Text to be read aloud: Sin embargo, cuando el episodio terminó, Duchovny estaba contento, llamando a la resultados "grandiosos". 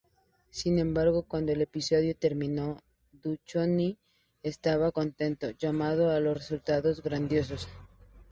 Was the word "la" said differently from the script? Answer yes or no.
yes